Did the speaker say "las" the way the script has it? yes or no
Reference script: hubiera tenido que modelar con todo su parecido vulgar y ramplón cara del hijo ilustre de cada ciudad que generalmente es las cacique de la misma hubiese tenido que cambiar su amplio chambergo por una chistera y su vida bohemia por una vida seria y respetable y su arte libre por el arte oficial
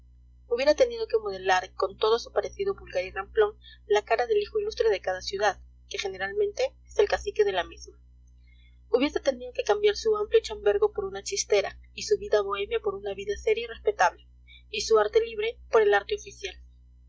no